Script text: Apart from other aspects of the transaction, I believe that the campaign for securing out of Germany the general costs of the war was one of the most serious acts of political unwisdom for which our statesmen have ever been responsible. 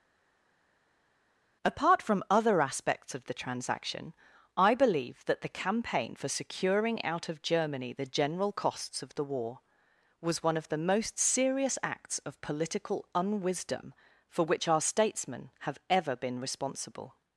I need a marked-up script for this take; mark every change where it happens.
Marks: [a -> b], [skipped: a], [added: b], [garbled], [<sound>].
Apart from other aspects of the transaction, I believe that the campaign for securing out of Germany the general costs of the war was one of the most serious acts of political unwisdom for which our statesmen have ever been responsible.